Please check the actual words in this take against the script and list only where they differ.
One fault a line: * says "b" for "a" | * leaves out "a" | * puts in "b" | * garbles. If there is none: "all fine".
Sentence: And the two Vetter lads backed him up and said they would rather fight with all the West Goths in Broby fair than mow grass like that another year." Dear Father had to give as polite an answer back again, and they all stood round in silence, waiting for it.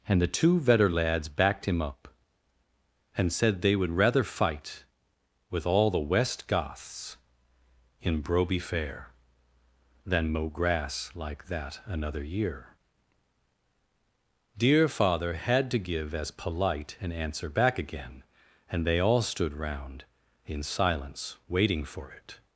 all fine